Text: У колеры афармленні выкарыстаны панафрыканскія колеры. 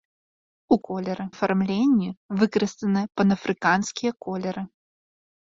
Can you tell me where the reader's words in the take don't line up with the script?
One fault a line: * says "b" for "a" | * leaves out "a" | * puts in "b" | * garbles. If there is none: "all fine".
all fine